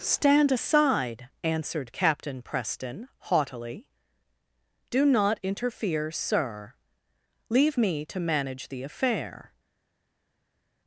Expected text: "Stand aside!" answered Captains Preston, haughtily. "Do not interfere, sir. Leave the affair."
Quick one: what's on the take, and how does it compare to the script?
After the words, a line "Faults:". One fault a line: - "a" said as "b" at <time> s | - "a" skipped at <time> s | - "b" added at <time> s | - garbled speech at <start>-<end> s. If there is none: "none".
"Stand aside!" answered Captain Preston, haughtily. "Do not interfere, sir. Leave me to manage the affair."
Faults:
- "Captains" said as "Captain" at 1.9 s
- "me to manage" added at 7.8 s